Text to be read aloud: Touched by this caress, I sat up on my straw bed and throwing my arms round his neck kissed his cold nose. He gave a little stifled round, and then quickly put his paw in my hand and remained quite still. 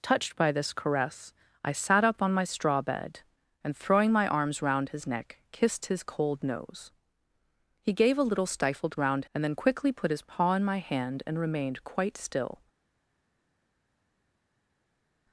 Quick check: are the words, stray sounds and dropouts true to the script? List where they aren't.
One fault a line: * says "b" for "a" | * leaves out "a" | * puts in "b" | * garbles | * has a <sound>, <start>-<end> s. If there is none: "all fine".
all fine